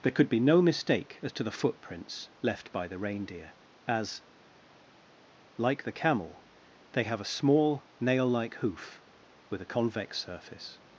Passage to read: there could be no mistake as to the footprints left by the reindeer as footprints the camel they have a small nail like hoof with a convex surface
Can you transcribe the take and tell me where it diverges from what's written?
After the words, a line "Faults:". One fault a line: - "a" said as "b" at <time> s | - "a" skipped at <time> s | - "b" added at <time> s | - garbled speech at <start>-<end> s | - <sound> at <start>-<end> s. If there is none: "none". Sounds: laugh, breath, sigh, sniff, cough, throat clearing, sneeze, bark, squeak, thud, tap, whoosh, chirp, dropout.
there could be no mistake as to the footprints left by the reindeer as like the camel they have a small nail like hoof with a convex surface
Faults:
- "footprints" said as "like" at 5.6 s